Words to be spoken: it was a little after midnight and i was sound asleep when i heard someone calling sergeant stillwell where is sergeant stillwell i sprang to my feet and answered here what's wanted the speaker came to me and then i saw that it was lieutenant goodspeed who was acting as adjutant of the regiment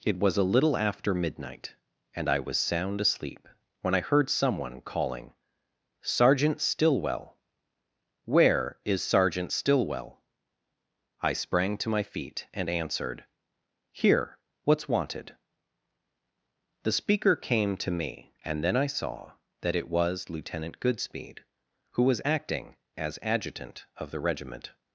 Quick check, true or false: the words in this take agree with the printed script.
true